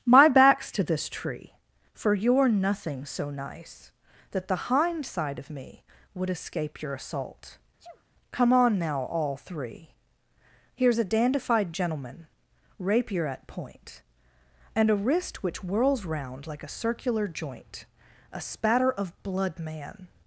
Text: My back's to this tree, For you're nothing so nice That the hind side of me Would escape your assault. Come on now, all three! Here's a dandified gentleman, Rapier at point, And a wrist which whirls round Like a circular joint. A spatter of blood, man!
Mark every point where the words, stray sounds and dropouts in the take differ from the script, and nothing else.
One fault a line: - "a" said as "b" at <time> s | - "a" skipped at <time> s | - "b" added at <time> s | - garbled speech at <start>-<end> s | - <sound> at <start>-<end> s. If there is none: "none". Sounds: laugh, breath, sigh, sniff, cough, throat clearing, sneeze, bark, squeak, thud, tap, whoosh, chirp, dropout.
- sneeze at 7.8-8.0 s